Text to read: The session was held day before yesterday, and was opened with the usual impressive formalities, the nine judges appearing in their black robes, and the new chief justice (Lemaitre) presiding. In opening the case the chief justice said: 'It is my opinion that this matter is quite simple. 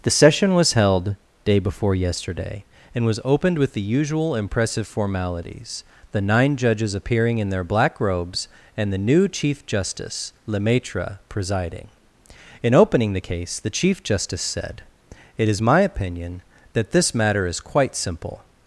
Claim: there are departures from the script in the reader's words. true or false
false